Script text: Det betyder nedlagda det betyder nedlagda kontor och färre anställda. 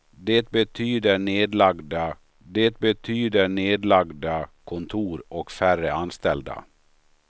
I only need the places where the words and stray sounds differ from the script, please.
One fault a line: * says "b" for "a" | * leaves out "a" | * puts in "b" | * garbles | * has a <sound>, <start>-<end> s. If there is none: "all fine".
all fine